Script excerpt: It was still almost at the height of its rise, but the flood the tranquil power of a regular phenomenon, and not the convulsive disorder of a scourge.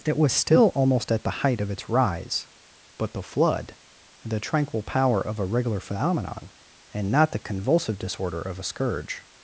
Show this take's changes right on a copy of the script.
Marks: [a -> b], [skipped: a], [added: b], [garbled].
It was still almost at the height of its rise, but the flood the tranquil power of a regular phenomenon, and not the convulsive disorder of a scourge.